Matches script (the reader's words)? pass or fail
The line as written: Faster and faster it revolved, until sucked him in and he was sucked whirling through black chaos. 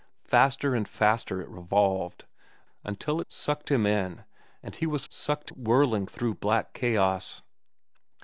pass